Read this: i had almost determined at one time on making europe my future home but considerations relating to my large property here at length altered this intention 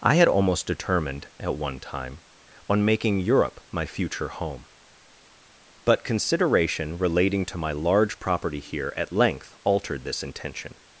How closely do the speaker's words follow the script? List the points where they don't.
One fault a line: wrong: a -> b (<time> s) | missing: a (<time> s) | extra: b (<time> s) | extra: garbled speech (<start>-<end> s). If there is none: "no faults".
wrong: considerations -> consideration (6.0 s)